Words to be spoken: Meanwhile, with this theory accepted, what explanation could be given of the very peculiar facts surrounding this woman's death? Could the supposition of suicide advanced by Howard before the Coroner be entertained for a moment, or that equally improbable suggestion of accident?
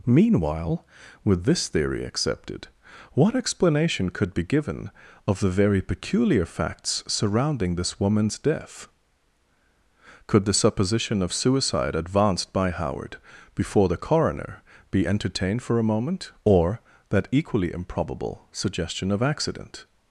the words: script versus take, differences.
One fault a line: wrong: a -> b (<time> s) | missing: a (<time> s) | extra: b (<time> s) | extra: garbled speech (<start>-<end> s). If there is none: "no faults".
no faults